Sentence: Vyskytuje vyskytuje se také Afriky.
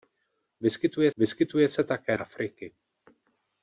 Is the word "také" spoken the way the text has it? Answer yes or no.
yes